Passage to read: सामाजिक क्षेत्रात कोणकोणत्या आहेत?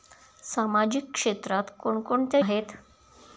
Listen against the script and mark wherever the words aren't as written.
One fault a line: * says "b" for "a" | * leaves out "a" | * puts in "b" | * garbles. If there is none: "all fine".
all fine